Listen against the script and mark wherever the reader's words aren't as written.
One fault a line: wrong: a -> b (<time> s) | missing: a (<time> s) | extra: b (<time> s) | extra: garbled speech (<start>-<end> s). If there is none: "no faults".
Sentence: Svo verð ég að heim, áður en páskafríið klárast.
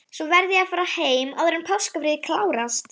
extra: fara (0.7 s)